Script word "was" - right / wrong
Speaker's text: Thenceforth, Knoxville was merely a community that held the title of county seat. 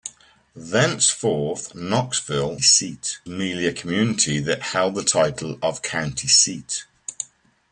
wrong